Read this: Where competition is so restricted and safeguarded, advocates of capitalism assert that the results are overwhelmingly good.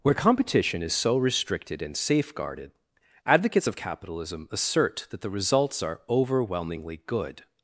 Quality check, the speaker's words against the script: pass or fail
pass